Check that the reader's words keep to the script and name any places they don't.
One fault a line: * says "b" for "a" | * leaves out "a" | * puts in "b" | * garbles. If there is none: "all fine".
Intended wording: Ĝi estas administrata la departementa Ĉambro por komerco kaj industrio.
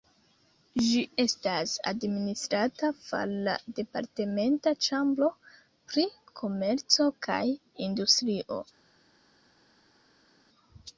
* puts in "far"
* says "pri" for "por"